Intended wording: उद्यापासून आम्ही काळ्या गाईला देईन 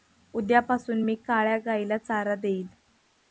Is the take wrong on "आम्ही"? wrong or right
wrong